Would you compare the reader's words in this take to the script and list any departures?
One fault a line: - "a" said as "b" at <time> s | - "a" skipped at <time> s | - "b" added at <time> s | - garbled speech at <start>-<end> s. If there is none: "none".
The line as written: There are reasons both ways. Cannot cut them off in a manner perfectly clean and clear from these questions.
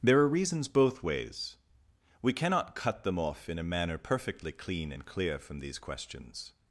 - "We" added at 2.2 s